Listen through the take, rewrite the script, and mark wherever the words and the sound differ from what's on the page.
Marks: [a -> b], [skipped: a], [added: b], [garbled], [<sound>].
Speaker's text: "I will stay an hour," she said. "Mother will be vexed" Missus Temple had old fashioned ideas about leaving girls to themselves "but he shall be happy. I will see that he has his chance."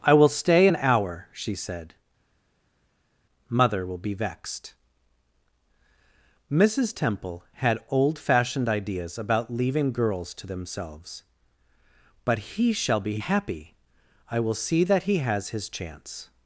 "I will stay an hour," she said. "Mother will be vexed" Missus Temple had old fashioned ideas about leaving girls to themselves "but he shall be happy. I will see that he has his chance."